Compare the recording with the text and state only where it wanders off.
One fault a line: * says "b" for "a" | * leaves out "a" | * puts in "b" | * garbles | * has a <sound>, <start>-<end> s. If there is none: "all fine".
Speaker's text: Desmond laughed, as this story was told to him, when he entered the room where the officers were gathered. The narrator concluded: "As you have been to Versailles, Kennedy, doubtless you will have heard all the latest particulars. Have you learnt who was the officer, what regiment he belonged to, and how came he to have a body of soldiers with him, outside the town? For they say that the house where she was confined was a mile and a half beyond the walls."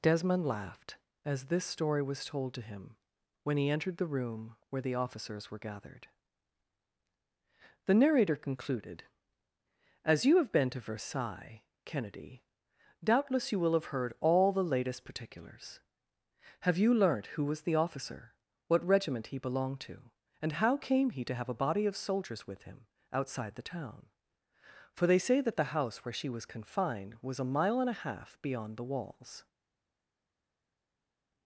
all fine